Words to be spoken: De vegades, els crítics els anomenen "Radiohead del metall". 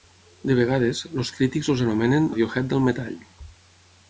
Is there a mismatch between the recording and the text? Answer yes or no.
no